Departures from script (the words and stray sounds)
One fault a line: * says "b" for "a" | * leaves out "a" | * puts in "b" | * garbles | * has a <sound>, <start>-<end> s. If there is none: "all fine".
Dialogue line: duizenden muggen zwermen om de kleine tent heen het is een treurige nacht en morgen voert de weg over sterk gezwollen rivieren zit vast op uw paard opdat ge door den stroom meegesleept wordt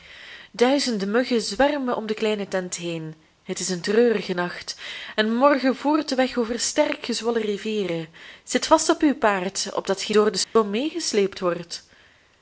* has a dropout, 10.4-10.6 s